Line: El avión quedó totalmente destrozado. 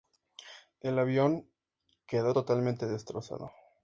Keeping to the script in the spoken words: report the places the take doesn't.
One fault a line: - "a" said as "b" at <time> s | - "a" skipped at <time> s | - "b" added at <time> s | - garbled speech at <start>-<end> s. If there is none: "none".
none